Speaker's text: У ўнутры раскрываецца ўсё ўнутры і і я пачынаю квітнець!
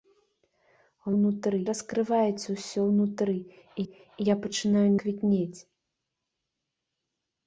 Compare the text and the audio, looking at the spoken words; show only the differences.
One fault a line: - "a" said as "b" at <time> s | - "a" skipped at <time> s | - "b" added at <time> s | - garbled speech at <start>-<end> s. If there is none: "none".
none